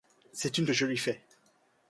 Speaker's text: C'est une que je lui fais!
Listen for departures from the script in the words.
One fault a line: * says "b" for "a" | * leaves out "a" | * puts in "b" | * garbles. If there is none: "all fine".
all fine